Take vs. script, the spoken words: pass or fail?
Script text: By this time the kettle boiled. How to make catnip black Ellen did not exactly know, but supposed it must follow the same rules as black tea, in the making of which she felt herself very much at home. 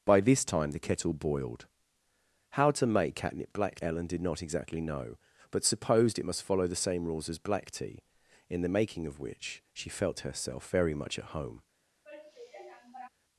pass